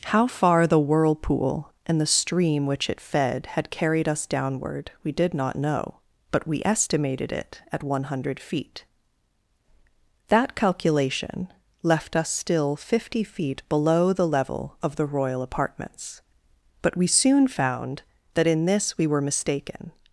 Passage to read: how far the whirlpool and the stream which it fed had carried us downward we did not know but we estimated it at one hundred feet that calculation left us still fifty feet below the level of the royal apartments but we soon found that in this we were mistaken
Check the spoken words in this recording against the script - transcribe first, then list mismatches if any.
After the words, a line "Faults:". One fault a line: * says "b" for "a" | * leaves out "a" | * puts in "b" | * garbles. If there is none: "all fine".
how far the whirlpool and the stream which it fed had carried us downward we did not know but we estimated it at one hundred feet that calculation left us still fifty feet below the level of the royal apartments but we soon found that in this we were mistaken
Faults:
all fine